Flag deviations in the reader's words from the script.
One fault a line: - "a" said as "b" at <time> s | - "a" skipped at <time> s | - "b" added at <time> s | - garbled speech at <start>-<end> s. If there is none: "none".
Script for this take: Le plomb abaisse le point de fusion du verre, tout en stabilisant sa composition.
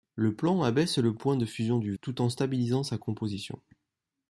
- "verre" skipped at 1.9 s